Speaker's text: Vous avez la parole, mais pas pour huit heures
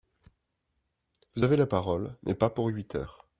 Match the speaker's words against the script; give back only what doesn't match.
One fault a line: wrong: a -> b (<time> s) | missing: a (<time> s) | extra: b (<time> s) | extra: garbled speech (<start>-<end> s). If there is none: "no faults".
no faults